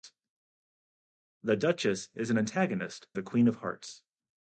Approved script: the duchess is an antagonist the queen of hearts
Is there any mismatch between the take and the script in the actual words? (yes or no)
no